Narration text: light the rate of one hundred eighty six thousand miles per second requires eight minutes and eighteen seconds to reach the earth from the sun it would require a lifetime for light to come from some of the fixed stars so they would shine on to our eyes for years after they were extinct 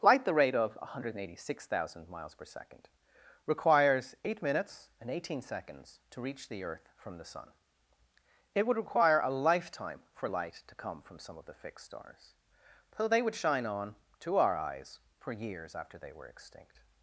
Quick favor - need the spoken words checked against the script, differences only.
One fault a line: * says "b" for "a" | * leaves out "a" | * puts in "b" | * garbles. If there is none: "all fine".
all fine